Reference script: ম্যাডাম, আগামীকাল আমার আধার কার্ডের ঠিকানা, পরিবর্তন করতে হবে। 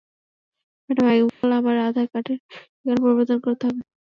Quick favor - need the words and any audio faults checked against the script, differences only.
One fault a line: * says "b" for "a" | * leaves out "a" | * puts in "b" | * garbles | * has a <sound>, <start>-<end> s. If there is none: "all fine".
* has a dropout, 1.3-1.4 s